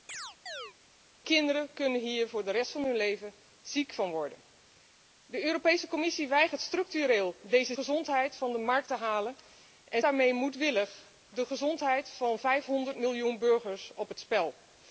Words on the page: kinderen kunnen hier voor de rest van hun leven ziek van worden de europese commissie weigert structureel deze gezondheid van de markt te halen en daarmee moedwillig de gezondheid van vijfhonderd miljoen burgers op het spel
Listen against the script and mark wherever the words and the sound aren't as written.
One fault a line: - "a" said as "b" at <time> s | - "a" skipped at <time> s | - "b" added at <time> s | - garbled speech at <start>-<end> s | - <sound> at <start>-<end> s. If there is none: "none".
- chirp at 0.1-0.7 s